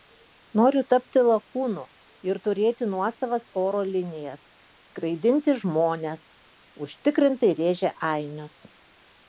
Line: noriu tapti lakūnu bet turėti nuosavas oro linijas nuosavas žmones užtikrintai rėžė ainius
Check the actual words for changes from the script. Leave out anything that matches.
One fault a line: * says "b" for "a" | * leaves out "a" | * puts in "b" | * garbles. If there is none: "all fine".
* says "ir" for "bet"
* says "skraidinti" for "nuosavas"